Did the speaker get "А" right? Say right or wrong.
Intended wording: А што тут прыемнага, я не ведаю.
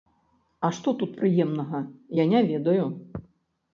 right